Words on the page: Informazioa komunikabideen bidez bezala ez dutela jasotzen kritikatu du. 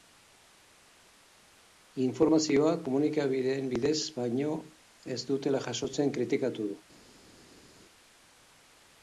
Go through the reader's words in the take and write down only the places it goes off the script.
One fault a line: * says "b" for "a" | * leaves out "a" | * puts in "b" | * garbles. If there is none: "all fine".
* says "baino" for "bezala"